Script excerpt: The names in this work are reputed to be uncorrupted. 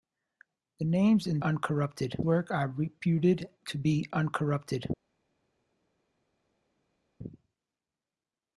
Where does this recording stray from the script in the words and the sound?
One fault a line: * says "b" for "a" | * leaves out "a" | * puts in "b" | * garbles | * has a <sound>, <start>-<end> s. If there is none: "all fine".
* says "uncorrupted" for "this"